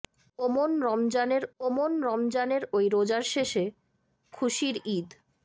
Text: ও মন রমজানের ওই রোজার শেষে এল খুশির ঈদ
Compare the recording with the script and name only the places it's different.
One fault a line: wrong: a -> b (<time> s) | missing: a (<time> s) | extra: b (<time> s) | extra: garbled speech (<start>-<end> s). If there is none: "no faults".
extra: ও মন রমজানের (1.6 s)
missing: এল (3.6 s)